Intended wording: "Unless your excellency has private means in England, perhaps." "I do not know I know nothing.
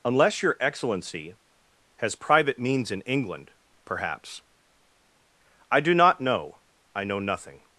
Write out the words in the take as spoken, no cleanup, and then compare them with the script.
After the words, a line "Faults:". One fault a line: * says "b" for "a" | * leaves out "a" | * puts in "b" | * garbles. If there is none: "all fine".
"Unless your excellency has private means in England, perhaps." "I do not know I know nothing.
Faults:
all fine